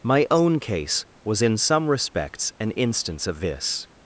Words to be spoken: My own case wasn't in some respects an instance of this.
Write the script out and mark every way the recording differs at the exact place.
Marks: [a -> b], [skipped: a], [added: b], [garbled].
My own case [wasn't -> was] in some respects an instance of this.